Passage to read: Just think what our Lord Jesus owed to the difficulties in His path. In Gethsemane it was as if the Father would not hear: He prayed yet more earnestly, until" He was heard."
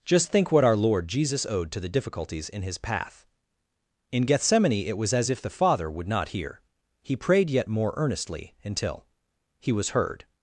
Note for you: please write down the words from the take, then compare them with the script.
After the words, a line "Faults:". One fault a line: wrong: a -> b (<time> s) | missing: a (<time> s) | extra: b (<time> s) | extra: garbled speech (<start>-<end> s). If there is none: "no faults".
Just think what our Lord Jesus owed to the difficulties in His path. In Gethsemane it was as if the Father would not hear: He prayed yet more earnestly, until" He was heard."
Faults:
no faults